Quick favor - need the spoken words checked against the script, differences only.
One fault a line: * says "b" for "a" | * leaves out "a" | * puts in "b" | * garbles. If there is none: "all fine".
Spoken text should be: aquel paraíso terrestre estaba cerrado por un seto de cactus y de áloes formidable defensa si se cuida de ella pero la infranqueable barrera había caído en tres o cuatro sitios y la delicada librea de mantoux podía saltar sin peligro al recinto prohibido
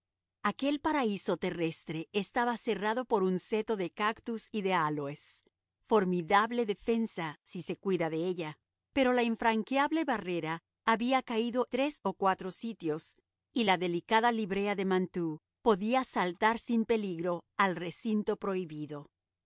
* leaves out "en"